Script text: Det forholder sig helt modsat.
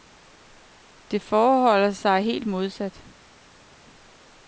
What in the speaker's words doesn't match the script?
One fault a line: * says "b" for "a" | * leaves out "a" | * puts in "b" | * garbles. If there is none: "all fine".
all fine